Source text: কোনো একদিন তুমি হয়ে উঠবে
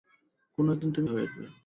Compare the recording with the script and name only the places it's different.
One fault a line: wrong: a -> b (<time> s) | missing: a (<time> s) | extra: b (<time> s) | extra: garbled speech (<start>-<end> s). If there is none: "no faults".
no faults